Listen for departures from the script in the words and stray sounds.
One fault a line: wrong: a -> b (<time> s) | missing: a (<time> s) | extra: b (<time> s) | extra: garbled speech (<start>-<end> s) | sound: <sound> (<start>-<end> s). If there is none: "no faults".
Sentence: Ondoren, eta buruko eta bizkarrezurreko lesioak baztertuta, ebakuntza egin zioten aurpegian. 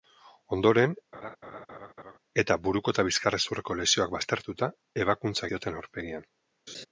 sound: laugh (1.1-2.2 s)
missing: egin (5.5 s)
sound: laugh (6.7-6.9 s)